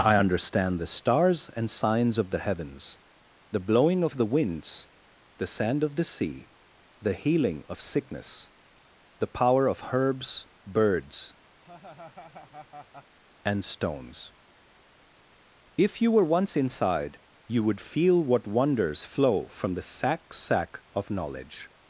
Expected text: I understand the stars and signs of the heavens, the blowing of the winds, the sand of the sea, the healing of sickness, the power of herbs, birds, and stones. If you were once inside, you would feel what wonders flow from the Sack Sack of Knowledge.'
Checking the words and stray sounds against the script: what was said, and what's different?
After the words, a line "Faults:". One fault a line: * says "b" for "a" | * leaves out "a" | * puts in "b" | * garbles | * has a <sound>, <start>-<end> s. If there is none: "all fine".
I understand the stars and signs of the heavens, the blowing of the winds, the sand of the sea, the healing of sickness, the power of herbs, birds, and stones. If you were once inside, you would feel what wonders flow from the Sack Sack of Knowledge.'
Faults:
* has a laugh, 11.6-13.2 s